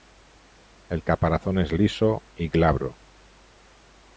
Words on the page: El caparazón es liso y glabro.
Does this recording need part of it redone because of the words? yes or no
no